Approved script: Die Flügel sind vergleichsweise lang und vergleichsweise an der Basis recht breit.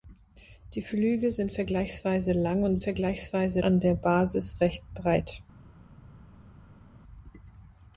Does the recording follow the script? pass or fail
pass